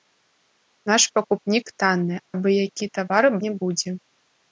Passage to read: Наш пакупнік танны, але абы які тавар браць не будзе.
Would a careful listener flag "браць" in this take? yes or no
yes